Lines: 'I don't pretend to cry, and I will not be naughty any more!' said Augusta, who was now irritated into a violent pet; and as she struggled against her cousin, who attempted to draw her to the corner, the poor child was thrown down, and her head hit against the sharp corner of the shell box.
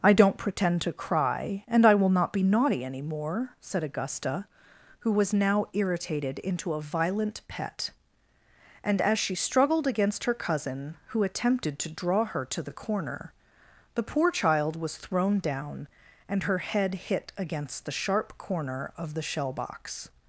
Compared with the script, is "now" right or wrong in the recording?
right